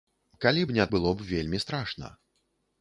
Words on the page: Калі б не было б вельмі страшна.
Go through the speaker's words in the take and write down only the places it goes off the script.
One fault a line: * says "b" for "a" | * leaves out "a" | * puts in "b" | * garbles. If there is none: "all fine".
all fine